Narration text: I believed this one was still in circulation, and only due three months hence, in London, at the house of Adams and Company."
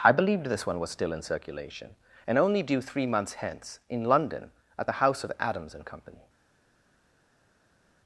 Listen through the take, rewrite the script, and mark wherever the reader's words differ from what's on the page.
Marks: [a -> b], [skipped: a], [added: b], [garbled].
I believed this one was still in circulation, and only due three months hence, in London, at the house of Adams and Company."